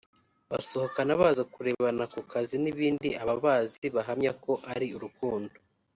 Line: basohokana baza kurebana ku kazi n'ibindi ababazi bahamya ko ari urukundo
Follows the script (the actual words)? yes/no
yes